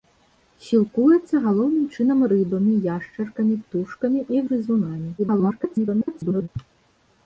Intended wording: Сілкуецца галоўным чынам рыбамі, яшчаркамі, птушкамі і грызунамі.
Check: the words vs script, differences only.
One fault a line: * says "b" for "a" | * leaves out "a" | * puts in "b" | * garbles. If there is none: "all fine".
* garbles